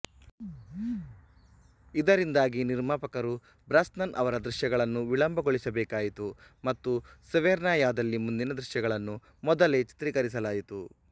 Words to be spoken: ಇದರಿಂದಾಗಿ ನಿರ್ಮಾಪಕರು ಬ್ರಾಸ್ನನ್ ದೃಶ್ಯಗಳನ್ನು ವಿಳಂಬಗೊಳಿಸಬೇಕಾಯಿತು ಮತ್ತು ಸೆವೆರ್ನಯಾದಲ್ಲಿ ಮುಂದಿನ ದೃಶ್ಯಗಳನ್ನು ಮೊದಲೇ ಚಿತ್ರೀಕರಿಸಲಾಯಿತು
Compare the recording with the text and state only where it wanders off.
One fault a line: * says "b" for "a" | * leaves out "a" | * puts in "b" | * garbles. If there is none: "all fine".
* puts in "ಅವರ"